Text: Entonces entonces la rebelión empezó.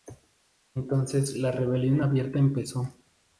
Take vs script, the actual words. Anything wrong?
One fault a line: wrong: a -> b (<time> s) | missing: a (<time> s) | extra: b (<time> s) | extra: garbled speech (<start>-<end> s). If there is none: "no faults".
missing: entonces (1.4 s)
extra: abierta (2.0 s)